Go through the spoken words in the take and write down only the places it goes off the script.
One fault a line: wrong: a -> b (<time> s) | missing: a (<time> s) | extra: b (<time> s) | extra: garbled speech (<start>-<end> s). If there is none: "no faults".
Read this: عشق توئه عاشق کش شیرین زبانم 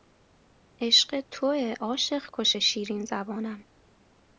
no faults